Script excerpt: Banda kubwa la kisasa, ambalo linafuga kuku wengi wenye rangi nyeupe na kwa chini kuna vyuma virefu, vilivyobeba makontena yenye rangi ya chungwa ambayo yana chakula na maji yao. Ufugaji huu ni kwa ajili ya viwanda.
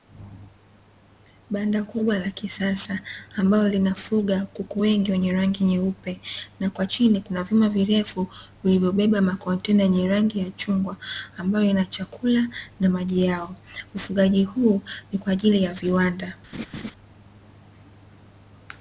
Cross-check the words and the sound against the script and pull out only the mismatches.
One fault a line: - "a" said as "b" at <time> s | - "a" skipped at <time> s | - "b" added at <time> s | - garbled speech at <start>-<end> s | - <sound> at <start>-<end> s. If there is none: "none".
- laugh at 16.5-16.9 s